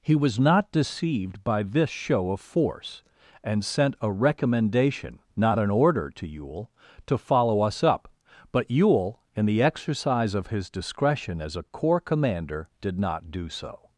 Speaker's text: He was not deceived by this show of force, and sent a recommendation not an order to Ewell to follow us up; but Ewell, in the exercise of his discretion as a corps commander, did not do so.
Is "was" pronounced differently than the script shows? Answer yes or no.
no